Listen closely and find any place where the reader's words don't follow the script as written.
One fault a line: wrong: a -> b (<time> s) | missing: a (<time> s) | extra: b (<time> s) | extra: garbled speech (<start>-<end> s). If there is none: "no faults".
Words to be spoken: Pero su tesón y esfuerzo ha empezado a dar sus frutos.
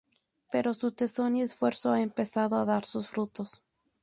no faults